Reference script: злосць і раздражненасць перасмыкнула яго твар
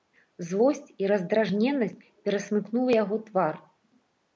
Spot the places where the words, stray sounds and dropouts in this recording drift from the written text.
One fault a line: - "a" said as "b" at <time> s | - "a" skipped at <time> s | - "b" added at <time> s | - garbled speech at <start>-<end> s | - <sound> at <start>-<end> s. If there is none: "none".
none